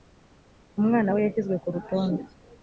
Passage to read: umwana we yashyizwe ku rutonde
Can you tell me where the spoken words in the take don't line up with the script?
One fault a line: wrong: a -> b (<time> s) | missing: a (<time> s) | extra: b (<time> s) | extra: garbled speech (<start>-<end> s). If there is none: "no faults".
no faults